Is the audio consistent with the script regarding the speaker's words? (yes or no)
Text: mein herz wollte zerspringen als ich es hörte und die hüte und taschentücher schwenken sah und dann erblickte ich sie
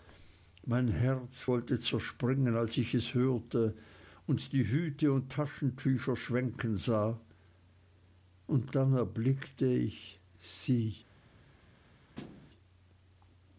yes